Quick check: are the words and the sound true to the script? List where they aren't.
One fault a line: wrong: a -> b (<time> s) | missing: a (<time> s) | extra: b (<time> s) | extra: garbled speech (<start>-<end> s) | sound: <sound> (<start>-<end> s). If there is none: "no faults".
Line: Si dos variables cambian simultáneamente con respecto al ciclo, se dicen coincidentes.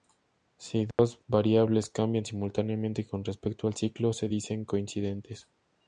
sound: dropout (0.9-1.0 s)